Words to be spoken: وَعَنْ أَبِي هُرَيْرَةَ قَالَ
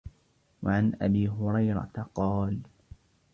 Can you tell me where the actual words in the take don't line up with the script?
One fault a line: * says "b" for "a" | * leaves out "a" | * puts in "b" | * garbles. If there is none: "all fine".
all fine